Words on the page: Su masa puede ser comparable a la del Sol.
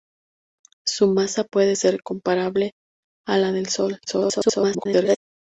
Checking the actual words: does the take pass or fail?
fail